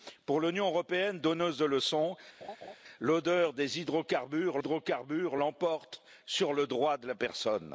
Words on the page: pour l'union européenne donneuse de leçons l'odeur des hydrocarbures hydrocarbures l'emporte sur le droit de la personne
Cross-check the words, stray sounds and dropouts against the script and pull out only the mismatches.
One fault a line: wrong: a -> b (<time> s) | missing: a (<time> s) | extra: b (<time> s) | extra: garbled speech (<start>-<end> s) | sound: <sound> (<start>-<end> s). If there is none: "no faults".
sound: laugh (2.4-2.8 s)